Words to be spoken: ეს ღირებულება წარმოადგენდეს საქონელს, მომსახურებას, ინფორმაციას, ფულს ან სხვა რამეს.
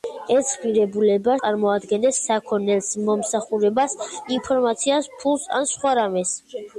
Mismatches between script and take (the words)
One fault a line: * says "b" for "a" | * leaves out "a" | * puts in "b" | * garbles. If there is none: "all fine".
all fine